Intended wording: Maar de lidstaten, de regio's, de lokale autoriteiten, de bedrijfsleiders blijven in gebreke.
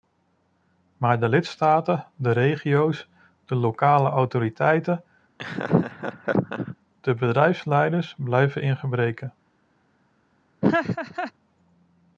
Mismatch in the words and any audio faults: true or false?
true